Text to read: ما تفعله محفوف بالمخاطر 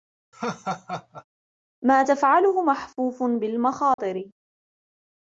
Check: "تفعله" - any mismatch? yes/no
no